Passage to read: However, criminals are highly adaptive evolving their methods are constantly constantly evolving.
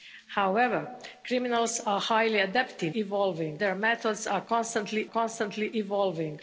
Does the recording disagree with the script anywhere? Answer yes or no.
no